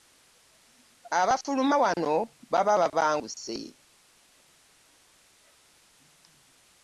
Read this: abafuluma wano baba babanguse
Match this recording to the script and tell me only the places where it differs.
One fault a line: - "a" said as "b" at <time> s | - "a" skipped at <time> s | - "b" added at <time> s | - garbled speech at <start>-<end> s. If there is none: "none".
none